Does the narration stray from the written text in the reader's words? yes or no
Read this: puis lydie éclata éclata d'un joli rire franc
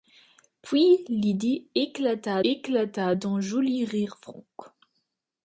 no